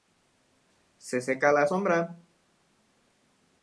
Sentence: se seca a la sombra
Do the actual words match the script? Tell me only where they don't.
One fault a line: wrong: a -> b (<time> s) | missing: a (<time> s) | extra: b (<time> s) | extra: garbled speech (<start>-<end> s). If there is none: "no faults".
no faults